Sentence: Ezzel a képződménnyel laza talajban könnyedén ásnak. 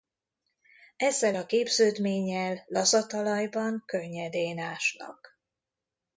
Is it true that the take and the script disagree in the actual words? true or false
false